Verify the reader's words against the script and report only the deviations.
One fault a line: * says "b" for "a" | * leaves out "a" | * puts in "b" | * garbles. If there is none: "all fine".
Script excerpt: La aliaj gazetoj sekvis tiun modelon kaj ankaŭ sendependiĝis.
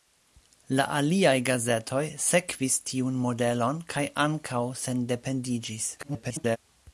* garbles